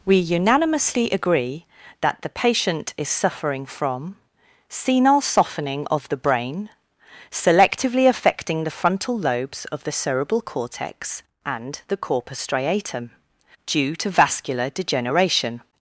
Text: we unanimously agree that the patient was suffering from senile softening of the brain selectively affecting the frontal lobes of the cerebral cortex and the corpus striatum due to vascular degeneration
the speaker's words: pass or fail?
fail